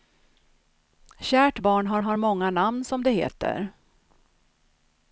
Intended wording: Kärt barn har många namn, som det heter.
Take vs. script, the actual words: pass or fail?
fail